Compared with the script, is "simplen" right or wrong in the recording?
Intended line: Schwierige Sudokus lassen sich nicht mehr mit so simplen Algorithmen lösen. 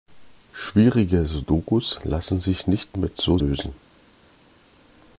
wrong